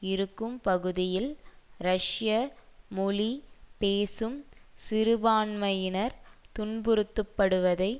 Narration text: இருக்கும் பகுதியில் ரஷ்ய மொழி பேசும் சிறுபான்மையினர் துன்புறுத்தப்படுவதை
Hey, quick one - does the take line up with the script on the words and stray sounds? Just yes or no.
yes